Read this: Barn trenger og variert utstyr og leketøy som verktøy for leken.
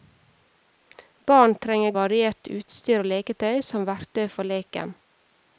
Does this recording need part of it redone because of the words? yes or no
no